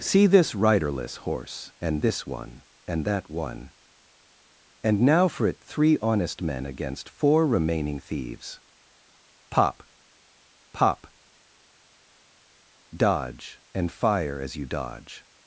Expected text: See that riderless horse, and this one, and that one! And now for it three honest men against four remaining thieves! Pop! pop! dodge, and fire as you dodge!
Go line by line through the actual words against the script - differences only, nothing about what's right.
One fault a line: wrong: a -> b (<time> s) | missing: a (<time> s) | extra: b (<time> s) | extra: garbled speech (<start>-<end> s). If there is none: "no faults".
wrong: that -> this (0.2 s)